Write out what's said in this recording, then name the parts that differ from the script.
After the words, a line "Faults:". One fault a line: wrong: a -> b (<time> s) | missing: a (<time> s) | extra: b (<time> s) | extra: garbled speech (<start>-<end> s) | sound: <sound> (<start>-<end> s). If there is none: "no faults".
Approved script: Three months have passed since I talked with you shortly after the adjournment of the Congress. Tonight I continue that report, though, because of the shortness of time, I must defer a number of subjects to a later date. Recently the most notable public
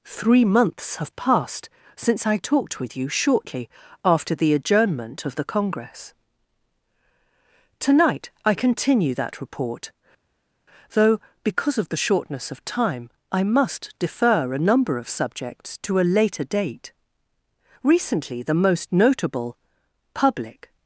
Three months have passed since I talked with you shortly after the adjournment of the Congress. Tonight I continue that report, though, because of the shortness of time, I must defer a number of subjects to a later date. Recently the most notable public
Faults:
no faults